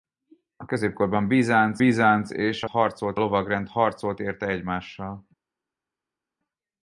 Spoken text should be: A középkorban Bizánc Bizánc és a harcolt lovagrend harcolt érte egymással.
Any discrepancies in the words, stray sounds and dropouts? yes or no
no